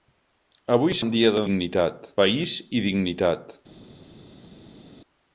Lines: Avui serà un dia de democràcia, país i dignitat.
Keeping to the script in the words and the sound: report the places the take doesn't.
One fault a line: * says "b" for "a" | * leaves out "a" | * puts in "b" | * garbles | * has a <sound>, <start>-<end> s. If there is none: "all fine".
* leaves out "serà"
* says "dignitat" for "democràcia"